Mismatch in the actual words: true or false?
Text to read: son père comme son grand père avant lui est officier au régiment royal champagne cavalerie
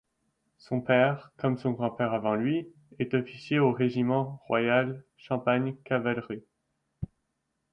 false